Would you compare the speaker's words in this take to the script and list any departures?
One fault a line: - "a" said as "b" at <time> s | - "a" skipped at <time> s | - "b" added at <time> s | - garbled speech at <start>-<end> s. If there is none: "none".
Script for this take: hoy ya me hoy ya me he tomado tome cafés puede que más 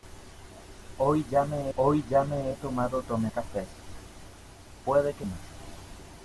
none